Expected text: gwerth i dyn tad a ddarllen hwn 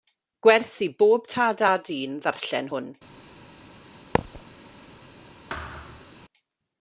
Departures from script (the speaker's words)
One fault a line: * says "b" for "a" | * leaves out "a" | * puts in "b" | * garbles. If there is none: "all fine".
* says "bob" for "dyn"
* puts in "dyn"